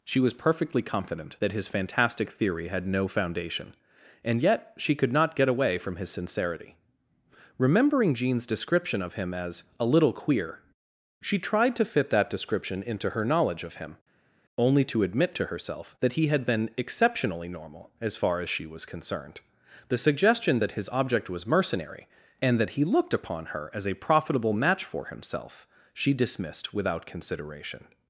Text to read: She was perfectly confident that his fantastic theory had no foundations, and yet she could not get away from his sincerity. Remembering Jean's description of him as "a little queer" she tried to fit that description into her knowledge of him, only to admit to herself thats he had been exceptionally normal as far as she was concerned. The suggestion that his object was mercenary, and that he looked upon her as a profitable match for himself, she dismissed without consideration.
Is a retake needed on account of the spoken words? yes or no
yes